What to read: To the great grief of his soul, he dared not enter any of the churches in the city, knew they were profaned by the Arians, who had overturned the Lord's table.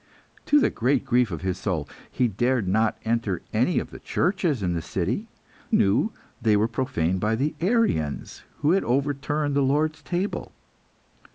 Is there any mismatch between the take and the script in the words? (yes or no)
no